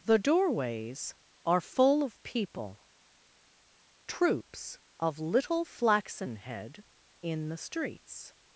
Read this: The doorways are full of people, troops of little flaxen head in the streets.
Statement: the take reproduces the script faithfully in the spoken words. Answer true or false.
true